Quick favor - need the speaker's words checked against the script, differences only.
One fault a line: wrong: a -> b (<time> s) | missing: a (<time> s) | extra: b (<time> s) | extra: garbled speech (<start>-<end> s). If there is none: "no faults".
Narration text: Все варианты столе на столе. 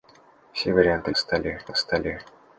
no faults